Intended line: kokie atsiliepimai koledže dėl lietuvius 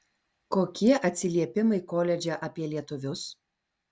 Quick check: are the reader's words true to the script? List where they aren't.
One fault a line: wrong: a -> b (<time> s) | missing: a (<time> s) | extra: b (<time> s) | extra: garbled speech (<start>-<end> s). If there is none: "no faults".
wrong: dėl -> apie (2.5 s)